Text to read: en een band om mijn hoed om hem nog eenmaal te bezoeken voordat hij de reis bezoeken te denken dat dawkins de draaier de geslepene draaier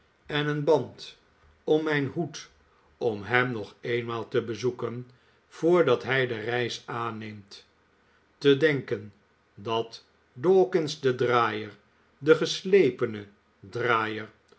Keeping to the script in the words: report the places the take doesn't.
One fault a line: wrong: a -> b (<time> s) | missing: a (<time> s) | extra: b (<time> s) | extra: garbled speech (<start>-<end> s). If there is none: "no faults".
wrong: bezoeken -> aanneemt (6.8 s)